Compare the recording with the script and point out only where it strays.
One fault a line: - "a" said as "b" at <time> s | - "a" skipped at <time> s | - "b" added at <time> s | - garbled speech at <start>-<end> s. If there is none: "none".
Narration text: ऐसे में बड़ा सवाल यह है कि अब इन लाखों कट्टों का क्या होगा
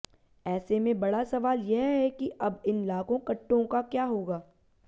none